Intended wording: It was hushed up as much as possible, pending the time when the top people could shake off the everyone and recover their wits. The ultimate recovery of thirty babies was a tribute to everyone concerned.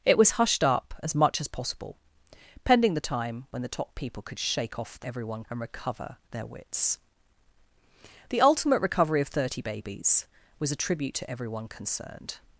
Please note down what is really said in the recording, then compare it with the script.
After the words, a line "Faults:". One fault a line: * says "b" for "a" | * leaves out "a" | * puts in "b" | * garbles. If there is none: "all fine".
It was hushed up as much as possible, pending the time when the top people could shake off the everyone and recover their wits. The ultimate recovery of thirty babies was a tribute to everyone concerned.
Faults:
all fine